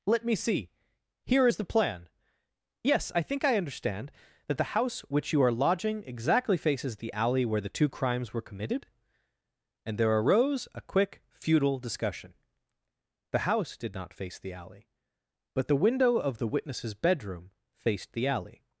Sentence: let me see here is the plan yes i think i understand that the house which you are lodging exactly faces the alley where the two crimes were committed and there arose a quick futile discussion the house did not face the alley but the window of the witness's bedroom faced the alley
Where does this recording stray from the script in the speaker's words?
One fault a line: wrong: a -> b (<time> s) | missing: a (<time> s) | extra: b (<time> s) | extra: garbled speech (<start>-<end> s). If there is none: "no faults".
no faults